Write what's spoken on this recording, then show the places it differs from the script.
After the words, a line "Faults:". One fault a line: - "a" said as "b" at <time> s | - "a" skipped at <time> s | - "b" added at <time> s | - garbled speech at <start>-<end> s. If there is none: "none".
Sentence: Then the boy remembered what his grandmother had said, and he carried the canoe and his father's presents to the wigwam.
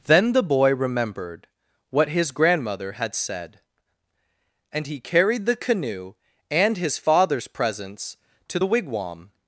Then the boy remembered what his grandmother had said, and he carried the canoe and his father's presents to the wigwam.
Faults:
none